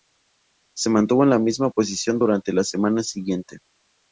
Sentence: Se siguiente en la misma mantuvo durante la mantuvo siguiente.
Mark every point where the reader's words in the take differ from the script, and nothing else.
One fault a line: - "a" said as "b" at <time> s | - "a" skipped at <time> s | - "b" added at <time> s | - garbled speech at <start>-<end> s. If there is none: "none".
- "siguiente" said as "mantuvo" at 0.9 s
- "mantuvo" said as "posición" at 1.7 s
- "mantuvo" said as "semana" at 2.6 s